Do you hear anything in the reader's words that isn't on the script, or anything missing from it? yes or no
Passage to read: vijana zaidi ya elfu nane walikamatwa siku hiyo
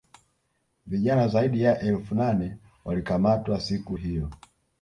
no